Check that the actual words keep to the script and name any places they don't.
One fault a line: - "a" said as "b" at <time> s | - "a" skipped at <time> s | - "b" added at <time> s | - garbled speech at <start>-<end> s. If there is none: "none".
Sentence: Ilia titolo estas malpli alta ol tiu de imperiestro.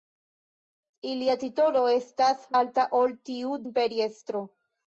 - "malpli" skipped at 2.5 s
- "de" skipped at 3.6 s